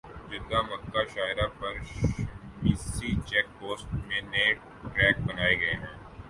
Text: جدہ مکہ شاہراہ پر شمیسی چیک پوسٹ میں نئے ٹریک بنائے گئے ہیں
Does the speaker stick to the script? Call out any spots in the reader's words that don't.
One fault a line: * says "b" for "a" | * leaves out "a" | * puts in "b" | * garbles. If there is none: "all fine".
all fine